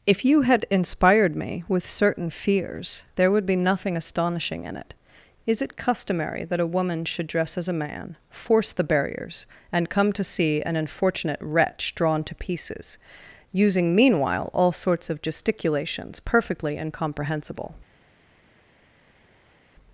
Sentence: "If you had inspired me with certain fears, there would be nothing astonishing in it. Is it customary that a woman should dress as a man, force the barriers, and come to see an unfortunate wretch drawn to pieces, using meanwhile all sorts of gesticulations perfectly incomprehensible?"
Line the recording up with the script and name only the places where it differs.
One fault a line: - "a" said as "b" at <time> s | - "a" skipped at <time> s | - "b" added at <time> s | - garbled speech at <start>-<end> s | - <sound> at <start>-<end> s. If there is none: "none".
none